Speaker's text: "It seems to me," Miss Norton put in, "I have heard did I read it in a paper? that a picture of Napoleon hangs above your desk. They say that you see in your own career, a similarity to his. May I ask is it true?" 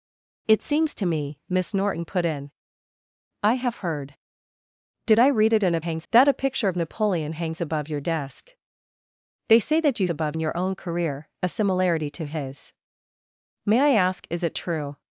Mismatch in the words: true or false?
true